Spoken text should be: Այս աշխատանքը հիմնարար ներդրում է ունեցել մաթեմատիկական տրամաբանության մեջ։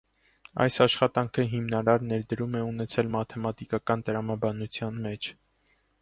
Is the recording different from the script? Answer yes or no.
no